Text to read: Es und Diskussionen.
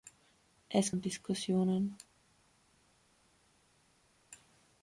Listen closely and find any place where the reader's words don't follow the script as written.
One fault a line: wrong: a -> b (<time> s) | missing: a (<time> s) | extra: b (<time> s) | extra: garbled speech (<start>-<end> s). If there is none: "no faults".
no faults